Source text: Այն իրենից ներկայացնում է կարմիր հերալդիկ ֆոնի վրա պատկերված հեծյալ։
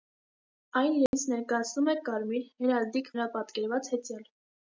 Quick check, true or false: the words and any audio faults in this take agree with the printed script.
false